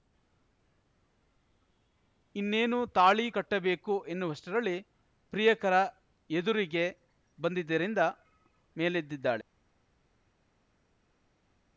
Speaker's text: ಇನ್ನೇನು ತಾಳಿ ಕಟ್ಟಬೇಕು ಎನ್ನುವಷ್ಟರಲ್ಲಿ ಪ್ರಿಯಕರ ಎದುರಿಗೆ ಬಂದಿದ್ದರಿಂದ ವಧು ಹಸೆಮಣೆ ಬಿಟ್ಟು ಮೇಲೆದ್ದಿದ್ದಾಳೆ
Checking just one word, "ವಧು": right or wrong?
wrong